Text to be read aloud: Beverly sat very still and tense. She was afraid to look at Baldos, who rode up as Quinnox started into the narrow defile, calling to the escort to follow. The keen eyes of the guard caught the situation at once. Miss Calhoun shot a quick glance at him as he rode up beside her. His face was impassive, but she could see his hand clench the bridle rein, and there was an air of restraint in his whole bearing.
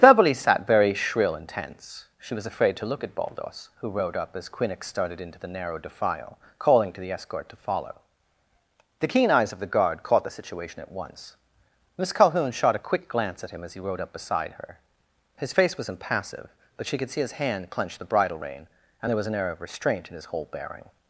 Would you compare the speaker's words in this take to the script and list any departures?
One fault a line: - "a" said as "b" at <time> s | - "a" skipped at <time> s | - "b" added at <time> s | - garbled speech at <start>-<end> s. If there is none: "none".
- "still" said as "shrill" at 0.9 s